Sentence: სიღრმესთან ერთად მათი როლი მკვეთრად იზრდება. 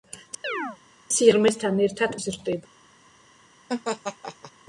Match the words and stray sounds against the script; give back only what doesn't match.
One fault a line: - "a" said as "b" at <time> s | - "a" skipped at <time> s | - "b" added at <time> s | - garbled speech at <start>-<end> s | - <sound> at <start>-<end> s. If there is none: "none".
- chirp at 0.4-0.8 s
- "მათი როლი მკვეთრად" skipped at 2.2 s
- laugh at 3.7-4.5 s